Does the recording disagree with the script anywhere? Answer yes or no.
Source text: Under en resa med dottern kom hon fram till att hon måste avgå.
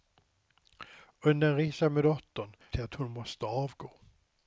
yes